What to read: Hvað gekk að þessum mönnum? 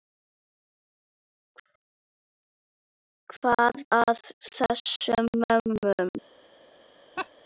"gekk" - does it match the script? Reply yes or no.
no